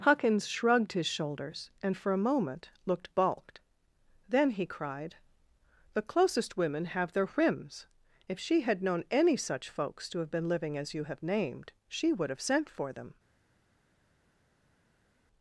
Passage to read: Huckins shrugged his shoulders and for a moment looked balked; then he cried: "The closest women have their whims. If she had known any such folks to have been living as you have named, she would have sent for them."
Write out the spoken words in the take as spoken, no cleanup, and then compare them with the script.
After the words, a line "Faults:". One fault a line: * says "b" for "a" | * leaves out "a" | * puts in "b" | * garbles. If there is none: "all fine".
Huckins shrugged his shoulders and for a moment looked balked; then he cried: "The closest women have their whims. If she had known any such folks to have been living as you have named, she would have sent for them."
Faults:
all fine